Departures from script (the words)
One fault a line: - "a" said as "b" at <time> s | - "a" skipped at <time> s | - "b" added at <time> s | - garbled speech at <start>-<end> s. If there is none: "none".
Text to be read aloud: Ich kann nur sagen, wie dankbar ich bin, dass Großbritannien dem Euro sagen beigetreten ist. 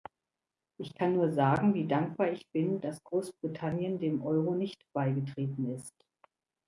- "sagen" said as "nicht" at 4.5 s